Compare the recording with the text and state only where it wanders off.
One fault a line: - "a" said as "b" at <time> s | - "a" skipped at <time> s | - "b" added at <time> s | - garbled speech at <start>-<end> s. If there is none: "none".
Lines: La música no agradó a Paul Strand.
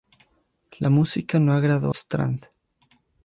- "a Paul" skipped at 1.9 s